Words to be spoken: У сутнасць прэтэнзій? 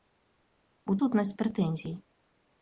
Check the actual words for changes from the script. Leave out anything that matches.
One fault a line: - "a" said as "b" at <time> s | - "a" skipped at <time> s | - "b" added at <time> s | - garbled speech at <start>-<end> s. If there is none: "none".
none